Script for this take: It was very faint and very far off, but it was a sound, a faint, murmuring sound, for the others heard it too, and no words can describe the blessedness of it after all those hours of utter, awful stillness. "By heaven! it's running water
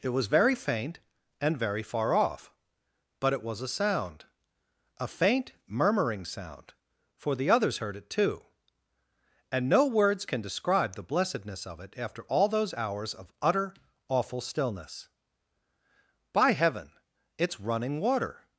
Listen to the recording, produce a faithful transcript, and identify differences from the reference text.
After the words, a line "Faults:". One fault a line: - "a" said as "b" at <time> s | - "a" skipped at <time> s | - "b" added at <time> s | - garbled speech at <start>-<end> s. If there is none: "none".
It was very faint and very far off, but it was a sound, a faint, murmuring sound, for the others heard it too, and no words can describe the blessedness of it after all those hours of utter, awful stillness. "By heaven! it's running water
Faults:
none